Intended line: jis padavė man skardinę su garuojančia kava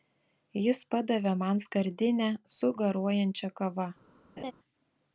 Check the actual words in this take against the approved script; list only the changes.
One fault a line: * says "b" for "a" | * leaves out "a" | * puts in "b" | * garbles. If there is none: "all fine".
all fine